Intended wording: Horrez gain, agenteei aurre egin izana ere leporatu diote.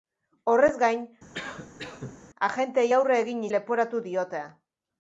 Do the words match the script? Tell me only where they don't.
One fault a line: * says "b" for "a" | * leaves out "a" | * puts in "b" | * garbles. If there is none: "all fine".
* leaves out "izana ere"